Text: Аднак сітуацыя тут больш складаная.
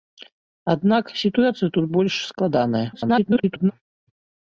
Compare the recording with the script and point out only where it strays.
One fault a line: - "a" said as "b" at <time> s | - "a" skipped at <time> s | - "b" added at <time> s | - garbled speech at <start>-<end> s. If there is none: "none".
- garbled speech at 2.9-3.7 s